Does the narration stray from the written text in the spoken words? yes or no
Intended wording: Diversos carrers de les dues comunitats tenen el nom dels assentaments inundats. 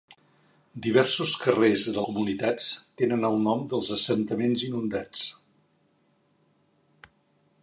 yes